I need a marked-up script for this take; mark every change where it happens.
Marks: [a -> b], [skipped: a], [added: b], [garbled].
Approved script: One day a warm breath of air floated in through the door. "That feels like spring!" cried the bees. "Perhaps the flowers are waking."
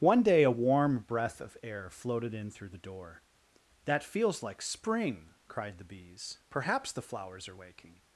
One day a warm breath of air floated in through the door. "That feels like spring!" cried the bees. "Perhaps the flowers are waking."